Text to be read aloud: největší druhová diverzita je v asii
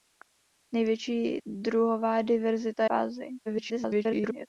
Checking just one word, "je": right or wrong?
wrong